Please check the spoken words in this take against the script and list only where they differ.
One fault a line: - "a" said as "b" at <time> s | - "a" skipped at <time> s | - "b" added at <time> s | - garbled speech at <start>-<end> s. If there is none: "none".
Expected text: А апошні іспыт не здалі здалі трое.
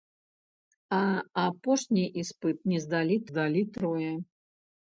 none